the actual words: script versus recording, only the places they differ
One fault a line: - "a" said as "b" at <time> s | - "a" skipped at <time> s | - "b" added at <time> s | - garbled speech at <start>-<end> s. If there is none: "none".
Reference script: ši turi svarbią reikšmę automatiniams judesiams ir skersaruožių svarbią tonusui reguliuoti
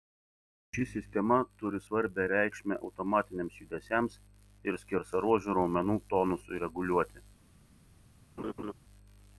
- "sistema" added at 0.9 s
- "svarbią" said as "raumenų" at 5.6 s